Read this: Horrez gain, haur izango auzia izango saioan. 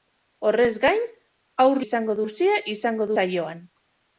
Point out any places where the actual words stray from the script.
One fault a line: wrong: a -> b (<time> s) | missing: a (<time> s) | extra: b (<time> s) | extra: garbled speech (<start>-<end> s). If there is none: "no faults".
no faults